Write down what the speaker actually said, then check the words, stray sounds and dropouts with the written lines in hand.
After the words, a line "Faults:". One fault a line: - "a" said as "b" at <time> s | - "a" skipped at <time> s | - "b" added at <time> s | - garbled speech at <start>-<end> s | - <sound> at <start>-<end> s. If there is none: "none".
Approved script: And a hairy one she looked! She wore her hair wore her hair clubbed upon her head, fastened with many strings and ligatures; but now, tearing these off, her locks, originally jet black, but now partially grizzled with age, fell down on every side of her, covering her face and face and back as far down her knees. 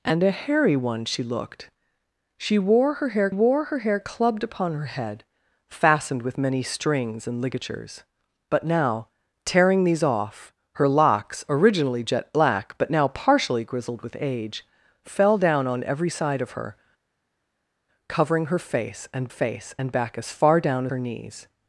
And a hairy one she looked! She wore her hair wore her hair clubbed upon her head, fastened with many strings and ligatures; but now, tearing these off, her locks, originally jet black, but now partially grizzled with age, fell down on every side of her, covering her face and face and back as far down her knees.
Faults:
none